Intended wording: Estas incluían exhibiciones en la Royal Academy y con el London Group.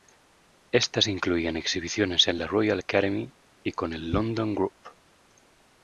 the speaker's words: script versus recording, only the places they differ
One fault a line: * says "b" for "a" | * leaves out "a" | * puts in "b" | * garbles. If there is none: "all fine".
all fine